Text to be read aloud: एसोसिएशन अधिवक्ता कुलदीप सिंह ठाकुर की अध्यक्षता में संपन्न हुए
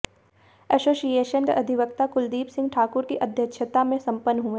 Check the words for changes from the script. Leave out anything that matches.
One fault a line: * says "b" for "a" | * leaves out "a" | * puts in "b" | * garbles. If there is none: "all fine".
all fine